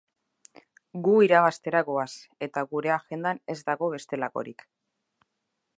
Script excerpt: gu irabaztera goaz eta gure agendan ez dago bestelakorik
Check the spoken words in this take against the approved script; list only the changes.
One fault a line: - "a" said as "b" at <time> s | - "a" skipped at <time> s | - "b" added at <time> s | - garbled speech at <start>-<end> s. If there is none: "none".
none